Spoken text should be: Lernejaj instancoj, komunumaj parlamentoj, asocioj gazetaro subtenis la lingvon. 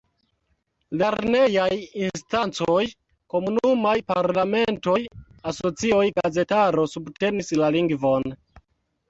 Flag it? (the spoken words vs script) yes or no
no